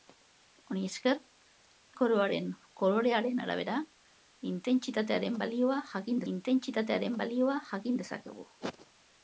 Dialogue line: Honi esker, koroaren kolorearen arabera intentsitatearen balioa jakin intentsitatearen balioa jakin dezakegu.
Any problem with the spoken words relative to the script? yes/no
no